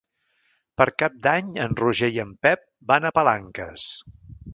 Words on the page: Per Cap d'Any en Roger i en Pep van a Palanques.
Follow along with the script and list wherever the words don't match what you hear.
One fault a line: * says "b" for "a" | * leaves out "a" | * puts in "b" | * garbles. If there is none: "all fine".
all fine